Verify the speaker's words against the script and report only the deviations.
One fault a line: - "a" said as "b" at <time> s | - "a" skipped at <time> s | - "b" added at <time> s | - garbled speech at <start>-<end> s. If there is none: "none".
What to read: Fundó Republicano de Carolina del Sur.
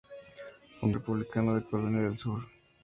none